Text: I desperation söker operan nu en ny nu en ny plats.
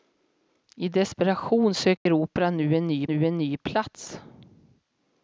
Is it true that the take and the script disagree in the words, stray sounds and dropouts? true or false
true